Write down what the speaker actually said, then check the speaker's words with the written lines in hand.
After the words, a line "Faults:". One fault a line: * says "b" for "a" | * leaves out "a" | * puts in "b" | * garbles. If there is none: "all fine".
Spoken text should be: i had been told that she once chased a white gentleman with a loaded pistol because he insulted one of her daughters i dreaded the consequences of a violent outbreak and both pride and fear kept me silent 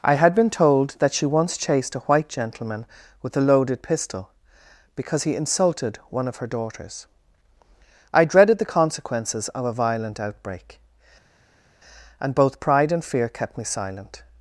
i had been told that she once chased a white gentleman with a loaded pistol because he insulted one of her daughters i dreaded the consequences of a violent outbreak and both pride and fear kept me silent
Faults:
all fine